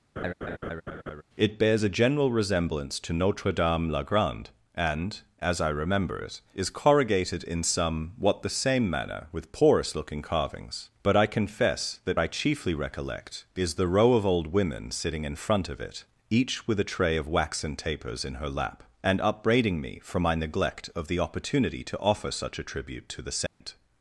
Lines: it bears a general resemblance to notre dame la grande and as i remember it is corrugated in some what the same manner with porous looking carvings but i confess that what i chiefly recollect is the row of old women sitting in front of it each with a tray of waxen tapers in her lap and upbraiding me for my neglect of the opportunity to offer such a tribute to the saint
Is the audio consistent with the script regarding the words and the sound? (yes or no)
no